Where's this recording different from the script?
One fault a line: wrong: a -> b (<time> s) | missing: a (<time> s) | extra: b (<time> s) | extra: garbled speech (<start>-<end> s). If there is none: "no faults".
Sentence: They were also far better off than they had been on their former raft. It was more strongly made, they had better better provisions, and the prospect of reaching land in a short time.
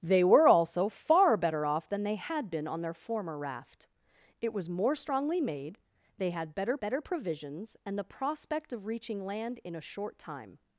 no faults